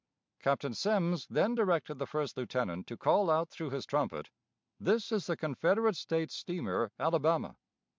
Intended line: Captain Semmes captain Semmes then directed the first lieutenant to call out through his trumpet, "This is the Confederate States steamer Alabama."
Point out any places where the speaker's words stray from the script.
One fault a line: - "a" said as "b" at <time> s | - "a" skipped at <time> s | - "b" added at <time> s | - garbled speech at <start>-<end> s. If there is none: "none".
- "captain Semmes" skipped at 1.3 s